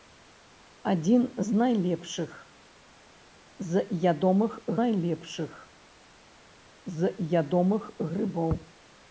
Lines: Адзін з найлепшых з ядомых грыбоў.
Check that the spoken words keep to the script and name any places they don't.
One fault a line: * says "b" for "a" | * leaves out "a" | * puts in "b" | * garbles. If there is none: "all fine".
* puts in "найлепшых з ядомых"